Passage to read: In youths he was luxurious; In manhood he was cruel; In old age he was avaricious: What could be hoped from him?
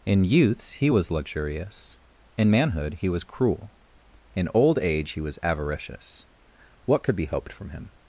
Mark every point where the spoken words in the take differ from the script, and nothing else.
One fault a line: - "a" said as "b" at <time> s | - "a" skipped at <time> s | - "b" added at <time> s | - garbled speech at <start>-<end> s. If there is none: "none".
none